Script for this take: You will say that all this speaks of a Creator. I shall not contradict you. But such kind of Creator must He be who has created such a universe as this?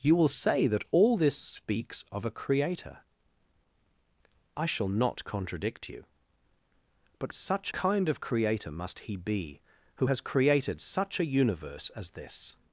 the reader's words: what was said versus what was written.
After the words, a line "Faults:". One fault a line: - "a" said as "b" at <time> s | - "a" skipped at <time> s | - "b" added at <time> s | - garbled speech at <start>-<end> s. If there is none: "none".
You will say that all this speaks of a Creator. I shall not contradict you. But such kind of Creator must He be who has created such a universe as this?
Faults:
none